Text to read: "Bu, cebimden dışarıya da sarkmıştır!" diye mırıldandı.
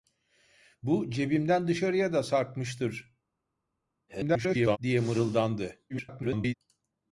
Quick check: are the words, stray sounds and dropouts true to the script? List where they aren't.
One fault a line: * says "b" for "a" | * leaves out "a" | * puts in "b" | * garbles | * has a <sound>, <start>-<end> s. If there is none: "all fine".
* garbles
* garbles